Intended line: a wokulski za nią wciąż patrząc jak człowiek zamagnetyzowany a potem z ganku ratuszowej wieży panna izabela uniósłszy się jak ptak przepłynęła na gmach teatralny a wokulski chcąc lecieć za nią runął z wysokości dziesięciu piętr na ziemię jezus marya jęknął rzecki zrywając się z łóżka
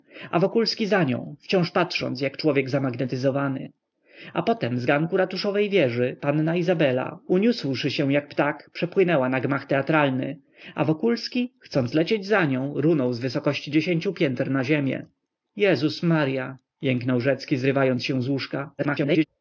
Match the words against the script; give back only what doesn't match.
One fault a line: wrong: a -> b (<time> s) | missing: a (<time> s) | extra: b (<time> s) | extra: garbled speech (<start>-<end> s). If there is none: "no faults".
extra: garbled speech (18.8-19.3 s)